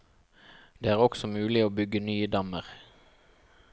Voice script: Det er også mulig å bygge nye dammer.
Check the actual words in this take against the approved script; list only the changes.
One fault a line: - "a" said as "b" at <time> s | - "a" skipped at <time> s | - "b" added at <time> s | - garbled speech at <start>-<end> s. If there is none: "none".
none